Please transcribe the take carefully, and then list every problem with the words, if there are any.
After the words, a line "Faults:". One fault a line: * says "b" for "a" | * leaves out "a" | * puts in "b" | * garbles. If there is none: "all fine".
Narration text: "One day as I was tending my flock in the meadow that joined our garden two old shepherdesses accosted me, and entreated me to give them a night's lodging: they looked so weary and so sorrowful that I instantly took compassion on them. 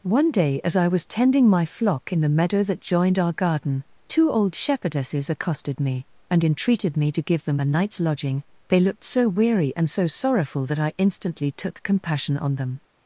"One day as I was tending my flock in the meadow that joined our garden two old shepherdesses accosted me, and entreated me to give them a night's lodging: they looked so weary and so sorrowful that I instantly took compassion on them.
Faults:
all fine